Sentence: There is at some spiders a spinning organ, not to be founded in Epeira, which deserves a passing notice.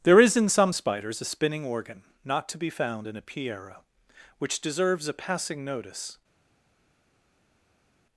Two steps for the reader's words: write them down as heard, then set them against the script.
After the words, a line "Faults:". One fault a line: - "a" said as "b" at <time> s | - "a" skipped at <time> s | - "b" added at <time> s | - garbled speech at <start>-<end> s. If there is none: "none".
There is in some spiders a spinning organ, not to be found in Epeira, which deserves a passing notice.
Faults:
- "at" said as "in" at 0.3 s
- "founded" said as "found" at 2.7 s